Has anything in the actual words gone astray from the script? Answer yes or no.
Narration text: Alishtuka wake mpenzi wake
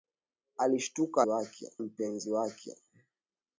no